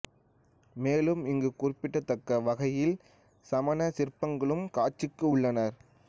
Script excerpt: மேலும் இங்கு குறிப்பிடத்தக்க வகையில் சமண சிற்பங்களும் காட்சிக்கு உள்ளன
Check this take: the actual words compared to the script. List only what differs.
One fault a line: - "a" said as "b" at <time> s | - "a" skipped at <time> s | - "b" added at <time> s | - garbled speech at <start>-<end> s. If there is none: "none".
none